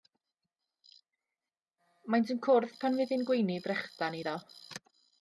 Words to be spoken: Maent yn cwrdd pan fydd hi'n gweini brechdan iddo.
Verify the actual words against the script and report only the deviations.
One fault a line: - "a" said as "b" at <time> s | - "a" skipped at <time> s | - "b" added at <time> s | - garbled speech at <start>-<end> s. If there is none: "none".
none